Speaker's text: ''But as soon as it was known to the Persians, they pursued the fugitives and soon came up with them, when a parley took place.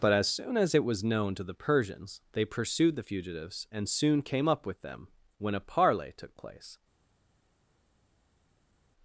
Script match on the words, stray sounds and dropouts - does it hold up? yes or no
yes